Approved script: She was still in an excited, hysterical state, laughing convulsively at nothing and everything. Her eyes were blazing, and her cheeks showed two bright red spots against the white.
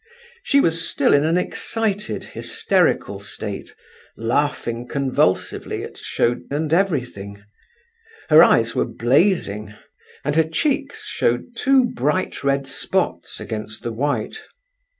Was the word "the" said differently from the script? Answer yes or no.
no